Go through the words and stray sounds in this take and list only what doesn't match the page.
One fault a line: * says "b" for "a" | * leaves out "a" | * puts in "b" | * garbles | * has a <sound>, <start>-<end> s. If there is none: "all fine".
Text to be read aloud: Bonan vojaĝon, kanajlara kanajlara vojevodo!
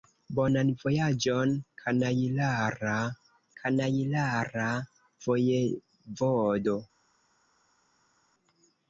all fine